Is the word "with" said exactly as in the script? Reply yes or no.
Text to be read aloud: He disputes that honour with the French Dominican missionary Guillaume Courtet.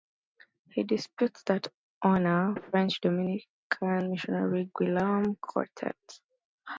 no